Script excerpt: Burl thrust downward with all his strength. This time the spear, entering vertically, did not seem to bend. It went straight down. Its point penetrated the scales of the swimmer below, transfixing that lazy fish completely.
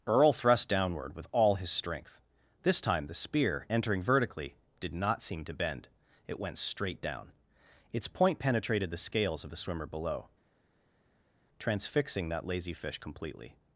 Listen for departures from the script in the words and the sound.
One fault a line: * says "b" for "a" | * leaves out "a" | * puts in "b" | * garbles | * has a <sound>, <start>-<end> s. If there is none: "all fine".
* says "Earl" for "Burl"